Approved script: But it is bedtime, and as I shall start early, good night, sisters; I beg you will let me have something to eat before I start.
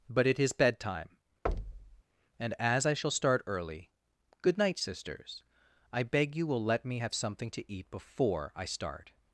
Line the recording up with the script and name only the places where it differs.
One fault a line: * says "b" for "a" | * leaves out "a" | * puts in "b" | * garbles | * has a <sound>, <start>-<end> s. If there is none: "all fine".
* has a thud, 1.5-2.0 s